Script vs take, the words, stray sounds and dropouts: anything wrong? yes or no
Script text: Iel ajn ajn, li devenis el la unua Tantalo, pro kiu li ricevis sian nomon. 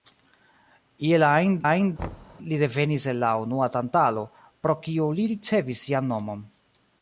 yes